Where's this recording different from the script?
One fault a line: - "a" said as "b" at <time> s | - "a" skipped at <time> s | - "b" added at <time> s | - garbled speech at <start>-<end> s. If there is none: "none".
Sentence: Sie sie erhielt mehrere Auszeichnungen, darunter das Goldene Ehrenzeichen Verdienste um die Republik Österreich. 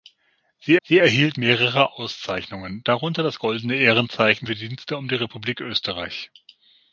none